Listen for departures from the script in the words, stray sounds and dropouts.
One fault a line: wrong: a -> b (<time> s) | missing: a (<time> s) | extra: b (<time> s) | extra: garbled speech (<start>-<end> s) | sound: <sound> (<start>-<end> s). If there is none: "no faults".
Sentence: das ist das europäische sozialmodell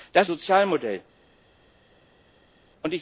missing: ist das europäische (0.3 s)